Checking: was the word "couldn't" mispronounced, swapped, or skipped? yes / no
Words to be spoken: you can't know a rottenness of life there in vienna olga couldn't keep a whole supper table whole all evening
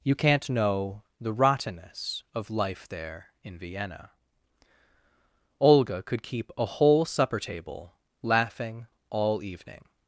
yes